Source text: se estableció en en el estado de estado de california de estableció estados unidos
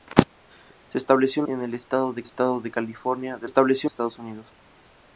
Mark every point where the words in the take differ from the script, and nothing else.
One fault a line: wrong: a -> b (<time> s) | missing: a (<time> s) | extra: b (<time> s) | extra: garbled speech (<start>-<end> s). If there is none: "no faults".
no faults